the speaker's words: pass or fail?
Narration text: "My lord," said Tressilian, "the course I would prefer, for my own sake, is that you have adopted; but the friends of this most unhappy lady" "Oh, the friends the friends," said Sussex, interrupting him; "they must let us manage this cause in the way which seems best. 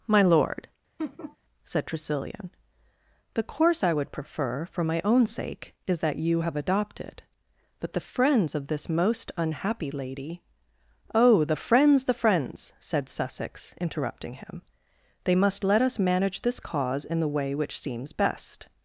pass